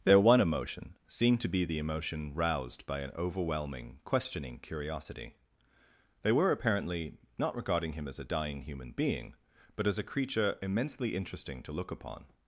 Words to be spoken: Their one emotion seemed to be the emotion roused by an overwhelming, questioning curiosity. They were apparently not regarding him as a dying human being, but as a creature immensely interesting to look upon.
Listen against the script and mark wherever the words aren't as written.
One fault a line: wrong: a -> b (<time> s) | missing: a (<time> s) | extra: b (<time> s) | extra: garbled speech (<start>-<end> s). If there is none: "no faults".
no faults